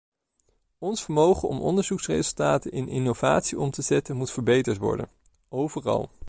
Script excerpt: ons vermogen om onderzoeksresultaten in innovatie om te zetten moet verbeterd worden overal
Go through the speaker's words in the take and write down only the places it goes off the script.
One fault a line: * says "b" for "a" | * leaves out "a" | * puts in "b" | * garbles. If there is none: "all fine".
all fine